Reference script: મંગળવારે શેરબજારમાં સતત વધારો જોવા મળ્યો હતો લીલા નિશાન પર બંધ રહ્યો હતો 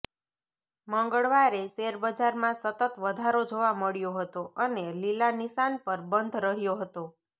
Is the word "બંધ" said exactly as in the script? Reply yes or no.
yes